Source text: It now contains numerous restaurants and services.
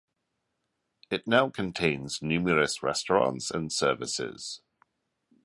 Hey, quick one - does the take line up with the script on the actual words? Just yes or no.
yes